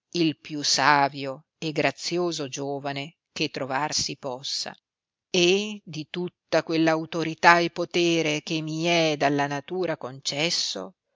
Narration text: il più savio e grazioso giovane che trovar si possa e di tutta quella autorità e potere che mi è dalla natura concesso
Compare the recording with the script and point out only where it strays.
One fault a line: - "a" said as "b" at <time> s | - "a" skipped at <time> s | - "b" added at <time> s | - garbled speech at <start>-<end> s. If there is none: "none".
none